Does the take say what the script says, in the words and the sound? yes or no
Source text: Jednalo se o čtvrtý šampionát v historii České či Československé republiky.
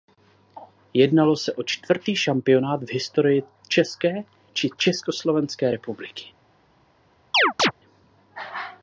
no